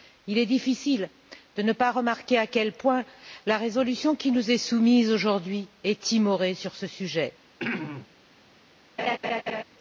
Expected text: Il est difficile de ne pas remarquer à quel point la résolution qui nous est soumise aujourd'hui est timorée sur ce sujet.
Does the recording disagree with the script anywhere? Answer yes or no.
no